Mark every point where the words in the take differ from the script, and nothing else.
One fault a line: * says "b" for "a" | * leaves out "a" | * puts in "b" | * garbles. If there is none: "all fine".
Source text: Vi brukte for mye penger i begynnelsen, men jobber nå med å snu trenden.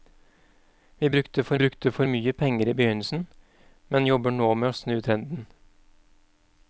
* puts in "brukte for"